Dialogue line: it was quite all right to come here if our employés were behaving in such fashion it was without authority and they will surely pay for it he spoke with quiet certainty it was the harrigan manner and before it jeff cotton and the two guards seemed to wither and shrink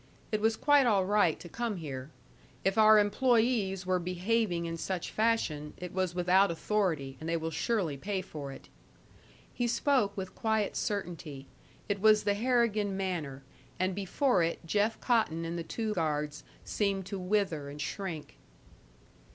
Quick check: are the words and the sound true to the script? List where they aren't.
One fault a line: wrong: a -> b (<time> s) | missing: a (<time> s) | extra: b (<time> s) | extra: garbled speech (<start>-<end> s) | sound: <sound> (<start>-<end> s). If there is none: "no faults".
no faults